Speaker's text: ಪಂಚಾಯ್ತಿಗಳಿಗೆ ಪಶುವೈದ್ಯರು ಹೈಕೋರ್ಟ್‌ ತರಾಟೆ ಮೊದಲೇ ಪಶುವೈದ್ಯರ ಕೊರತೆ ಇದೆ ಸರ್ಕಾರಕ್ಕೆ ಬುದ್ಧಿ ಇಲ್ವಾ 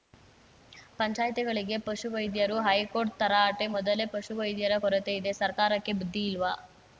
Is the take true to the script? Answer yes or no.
yes